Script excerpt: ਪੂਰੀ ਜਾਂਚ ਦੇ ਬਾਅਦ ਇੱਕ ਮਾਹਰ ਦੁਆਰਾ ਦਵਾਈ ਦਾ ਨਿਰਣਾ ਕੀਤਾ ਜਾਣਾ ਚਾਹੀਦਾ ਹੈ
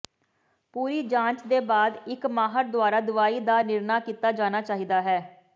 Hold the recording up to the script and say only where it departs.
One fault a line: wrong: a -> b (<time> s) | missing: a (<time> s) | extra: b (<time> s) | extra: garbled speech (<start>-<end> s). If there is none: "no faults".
no faults